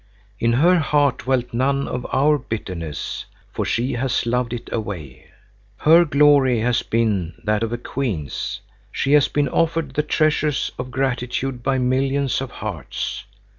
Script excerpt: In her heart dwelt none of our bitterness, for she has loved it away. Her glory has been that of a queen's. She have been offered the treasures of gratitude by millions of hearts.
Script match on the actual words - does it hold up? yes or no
no